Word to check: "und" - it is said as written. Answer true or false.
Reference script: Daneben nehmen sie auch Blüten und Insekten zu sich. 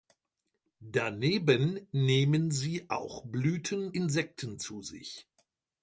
false